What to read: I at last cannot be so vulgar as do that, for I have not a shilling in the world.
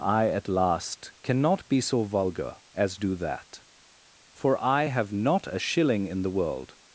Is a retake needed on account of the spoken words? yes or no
no